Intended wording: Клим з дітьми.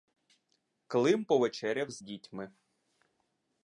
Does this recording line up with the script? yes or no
no